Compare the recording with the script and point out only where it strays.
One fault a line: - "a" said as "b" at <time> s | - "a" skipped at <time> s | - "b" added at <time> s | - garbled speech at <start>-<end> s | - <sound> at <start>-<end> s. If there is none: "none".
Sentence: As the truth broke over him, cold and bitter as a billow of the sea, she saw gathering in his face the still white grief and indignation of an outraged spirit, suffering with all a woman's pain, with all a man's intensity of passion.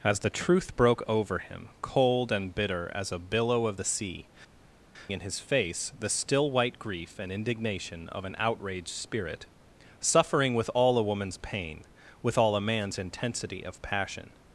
- "she saw gathering" skipped at 4.3 s